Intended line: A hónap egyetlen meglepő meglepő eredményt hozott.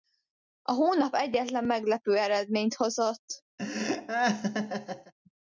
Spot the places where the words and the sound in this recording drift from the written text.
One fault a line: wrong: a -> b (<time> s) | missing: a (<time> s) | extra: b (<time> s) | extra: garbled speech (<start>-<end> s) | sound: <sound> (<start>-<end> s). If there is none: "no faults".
missing: meglepő (2.2 s)
sound: laugh (3.6-5.1 s)